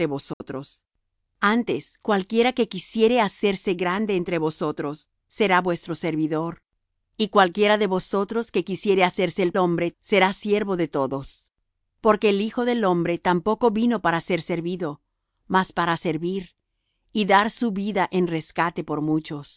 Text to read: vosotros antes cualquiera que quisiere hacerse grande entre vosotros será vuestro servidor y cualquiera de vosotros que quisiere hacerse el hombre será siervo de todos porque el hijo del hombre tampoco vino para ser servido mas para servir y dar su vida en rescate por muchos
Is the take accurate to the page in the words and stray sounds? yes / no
no